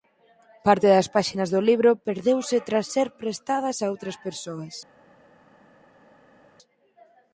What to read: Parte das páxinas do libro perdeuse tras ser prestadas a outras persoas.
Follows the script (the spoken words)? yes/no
yes